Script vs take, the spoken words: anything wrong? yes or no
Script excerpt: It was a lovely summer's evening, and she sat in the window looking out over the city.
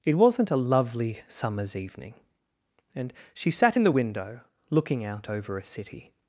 yes